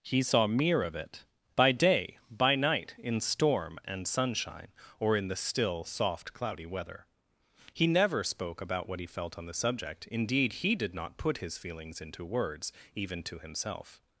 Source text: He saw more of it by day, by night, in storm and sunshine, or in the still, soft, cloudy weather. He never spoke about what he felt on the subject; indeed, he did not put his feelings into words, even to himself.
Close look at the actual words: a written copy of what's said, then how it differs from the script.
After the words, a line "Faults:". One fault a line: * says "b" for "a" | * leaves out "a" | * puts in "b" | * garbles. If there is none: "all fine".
He saw mere of it by day, by night, in storm and sunshine, or in the still, soft, cloudy weather. He never spoke about what he felt on the subject; indeed, he did not put his feelings into words, even to himself.
Faults:
* says "mere" for "more"